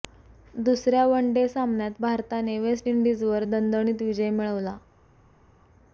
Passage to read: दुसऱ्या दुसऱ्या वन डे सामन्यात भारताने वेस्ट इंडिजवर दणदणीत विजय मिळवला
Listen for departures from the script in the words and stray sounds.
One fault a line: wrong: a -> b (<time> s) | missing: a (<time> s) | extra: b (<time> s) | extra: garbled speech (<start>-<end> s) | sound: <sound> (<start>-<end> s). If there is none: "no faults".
missing: दुसऱ्या (1.1 s)